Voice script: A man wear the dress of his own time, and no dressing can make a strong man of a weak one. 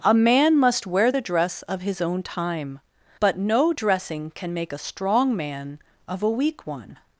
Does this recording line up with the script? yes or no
no